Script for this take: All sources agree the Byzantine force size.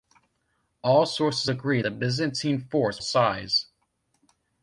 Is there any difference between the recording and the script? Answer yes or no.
no